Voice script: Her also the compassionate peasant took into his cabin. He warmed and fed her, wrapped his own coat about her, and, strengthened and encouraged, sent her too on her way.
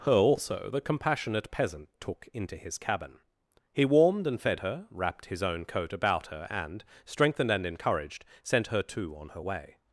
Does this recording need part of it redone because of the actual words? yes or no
no